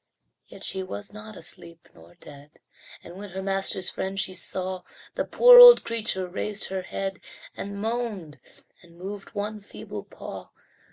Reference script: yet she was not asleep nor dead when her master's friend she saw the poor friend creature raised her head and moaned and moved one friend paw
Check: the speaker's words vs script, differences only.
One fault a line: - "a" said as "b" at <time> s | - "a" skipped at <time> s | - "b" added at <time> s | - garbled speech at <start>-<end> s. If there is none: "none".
- "and" added at 3.0 s
- "friend" said as "old" at 5.6 s
- "friend" said as "feeble" at 9.6 s